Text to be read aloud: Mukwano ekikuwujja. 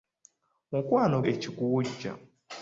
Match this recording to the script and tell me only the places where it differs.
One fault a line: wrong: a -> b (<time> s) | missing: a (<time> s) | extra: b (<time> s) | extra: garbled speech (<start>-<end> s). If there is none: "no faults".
no faults